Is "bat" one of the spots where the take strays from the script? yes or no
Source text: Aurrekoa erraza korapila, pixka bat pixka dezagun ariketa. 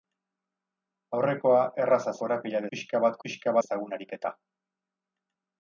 no